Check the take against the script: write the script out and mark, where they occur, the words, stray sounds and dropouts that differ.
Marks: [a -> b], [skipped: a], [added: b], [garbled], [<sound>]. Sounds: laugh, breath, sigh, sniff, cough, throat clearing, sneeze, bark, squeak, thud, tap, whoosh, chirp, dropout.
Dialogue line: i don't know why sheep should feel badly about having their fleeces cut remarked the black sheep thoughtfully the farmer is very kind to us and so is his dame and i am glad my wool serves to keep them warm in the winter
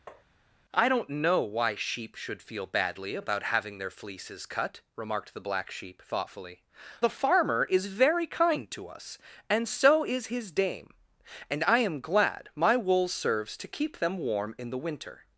[tap] i don't know why sheep should feel badly about having their fleeces cut remarked the black sheep thoughtfully the farmer is very kind to us and so is his dame and i am glad my wool serves to keep them warm in the winter